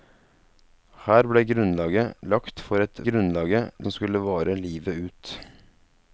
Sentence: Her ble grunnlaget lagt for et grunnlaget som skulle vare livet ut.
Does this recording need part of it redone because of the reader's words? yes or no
no